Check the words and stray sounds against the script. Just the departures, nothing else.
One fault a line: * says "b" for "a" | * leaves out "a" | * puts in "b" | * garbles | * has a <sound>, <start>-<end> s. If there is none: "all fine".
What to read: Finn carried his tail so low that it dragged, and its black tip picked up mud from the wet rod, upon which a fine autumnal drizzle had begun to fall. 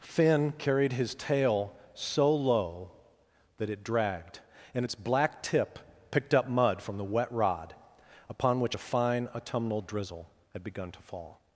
all fine